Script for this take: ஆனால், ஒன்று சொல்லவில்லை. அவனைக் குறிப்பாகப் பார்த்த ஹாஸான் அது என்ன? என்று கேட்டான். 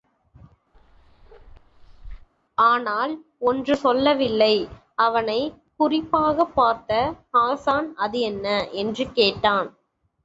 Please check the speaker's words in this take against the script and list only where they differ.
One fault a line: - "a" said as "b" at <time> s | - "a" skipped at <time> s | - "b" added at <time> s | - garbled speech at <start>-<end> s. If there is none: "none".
none